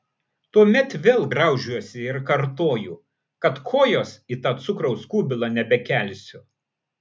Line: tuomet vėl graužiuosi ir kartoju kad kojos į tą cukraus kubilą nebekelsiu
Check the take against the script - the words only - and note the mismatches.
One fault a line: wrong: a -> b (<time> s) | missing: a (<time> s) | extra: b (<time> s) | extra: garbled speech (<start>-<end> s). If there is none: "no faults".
no faults